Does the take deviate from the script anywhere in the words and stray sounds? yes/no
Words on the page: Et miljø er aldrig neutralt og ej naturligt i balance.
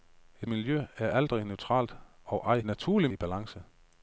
no